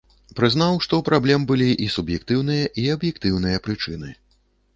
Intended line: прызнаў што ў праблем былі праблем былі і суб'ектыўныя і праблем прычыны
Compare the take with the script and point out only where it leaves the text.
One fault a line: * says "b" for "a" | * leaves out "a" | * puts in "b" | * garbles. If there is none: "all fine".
* leaves out "праблем былі"
* says "аб'ектыўныя" for "праблем"